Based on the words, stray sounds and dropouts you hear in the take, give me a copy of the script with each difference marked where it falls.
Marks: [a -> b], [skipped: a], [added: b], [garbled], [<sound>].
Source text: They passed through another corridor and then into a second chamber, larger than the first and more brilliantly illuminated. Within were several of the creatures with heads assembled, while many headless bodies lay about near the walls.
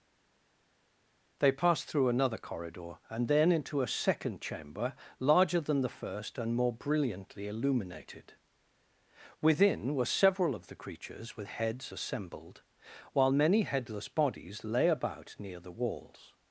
They passed through another corridor and then into a second chamber, larger than the first and more brilliantly illuminated. Within were several of the creatures with heads assembled, while many headless bodies lay about near the walls.